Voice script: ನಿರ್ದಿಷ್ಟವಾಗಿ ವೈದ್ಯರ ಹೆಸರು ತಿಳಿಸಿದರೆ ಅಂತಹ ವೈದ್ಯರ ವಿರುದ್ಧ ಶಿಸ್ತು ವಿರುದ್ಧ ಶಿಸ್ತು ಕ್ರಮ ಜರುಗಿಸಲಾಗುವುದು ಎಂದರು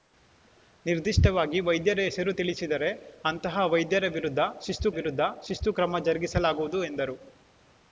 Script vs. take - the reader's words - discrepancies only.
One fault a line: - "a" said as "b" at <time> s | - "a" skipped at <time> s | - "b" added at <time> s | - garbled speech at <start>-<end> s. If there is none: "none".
none